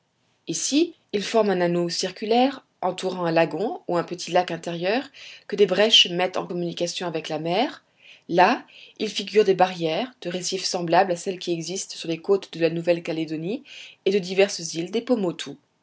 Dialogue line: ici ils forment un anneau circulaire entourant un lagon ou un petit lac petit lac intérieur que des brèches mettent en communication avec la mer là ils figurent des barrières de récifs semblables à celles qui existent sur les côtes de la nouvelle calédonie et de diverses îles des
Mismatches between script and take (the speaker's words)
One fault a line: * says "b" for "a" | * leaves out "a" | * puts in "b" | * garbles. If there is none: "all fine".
* leaves out "petit lac"